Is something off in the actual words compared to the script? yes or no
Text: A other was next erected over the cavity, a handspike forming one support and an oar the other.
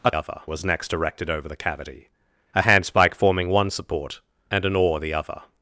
no